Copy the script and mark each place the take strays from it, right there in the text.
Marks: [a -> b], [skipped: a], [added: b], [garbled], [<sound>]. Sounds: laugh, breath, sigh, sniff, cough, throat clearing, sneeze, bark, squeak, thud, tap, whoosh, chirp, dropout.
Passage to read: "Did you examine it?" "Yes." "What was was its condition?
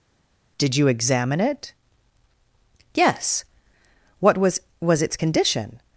"Did you examine it?" "Yes." "What was was its condition?